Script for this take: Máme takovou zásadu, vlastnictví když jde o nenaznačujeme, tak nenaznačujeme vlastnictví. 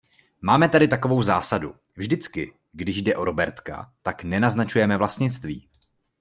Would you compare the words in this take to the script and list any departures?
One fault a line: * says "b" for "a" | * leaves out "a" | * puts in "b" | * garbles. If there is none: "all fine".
* puts in "tady"
* says "vždycky" for "vlastnictví"
* says "robertka" for "nenaznačujeme"